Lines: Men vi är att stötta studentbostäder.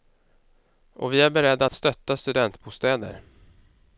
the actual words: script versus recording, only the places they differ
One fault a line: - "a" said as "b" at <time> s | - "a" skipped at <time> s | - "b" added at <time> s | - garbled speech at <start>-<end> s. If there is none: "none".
- "Men" said as "Och" at 0.9 s
- "beredda" added at 1.3 s